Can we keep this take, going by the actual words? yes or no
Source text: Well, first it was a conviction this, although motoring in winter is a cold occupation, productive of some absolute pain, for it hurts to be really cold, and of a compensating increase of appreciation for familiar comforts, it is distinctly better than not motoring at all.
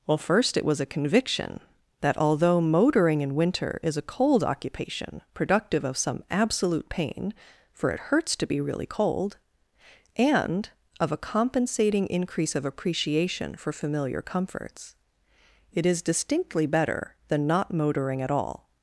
no